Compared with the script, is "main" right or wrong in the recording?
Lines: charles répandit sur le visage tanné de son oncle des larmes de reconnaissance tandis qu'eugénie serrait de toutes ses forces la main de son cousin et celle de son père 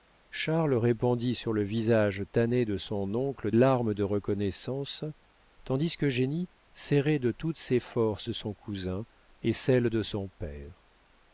wrong